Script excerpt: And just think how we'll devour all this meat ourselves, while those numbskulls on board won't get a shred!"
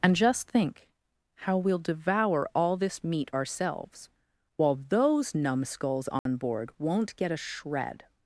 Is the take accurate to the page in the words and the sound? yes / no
no